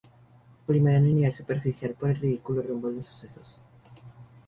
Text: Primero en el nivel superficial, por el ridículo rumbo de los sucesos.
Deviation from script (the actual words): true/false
false